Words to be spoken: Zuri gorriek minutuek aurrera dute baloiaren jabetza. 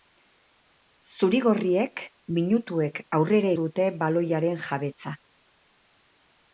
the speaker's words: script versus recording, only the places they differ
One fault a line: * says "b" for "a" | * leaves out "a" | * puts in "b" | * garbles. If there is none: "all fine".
all fine